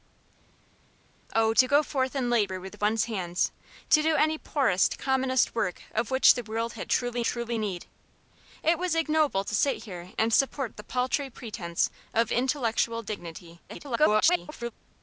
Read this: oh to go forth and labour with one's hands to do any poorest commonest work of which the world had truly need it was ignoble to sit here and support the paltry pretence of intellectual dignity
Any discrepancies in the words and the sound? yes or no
yes